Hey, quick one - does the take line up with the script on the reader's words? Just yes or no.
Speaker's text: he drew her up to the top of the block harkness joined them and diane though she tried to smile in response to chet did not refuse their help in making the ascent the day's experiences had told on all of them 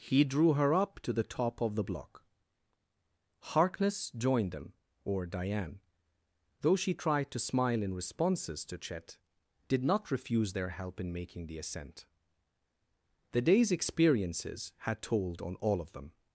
no